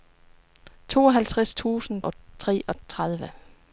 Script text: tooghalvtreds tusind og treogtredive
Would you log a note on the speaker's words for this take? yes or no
no